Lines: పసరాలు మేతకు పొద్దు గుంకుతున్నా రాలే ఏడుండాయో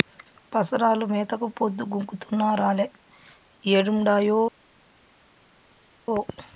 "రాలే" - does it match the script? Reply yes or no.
yes